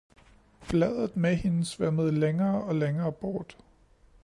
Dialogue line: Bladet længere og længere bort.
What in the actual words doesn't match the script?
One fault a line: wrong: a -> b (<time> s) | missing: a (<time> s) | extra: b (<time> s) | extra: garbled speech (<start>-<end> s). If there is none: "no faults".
extra: med hende svømmede (1.2 s)